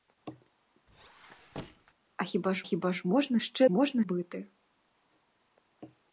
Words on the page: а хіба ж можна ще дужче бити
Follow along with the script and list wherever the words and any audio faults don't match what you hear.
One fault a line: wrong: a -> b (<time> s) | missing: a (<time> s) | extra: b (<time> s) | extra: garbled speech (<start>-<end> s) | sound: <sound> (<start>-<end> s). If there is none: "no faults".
sound: squeak (0.9-1.9 s)
extra: хіба ж (2.6 s)
wrong: дужче -> можна (3.7 s)